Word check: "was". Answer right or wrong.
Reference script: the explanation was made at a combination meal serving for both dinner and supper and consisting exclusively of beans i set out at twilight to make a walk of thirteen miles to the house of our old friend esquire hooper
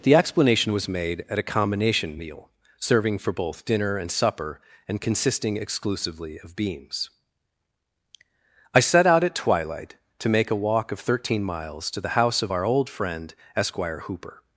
right